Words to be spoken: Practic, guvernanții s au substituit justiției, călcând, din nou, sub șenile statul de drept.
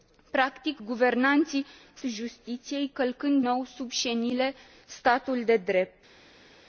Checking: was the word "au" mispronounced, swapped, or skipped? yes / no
yes